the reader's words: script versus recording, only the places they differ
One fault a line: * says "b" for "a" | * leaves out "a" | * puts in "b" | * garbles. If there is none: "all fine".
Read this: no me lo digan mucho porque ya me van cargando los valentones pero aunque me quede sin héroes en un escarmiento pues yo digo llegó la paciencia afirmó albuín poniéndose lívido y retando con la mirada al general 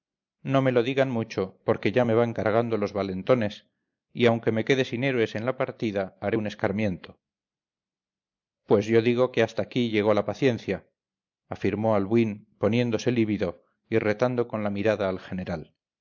* says "y" for "pero"
* puts in "la partida haré"
* puts in "que hasta aquí"